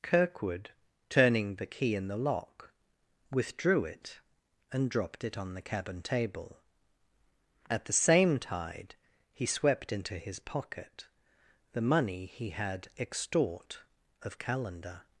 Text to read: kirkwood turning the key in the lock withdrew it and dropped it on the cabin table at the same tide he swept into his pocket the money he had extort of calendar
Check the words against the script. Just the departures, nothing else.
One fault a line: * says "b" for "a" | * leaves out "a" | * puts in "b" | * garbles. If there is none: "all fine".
all fine